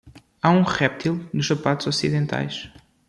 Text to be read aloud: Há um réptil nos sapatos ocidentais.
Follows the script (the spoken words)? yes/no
yes